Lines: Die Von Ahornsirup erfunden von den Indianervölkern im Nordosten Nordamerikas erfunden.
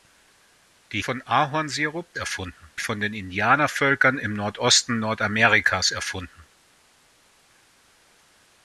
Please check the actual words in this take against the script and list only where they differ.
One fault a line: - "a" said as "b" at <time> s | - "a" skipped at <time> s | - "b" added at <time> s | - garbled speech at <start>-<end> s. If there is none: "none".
none